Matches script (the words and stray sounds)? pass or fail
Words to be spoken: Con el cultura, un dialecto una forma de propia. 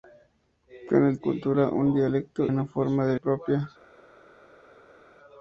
pass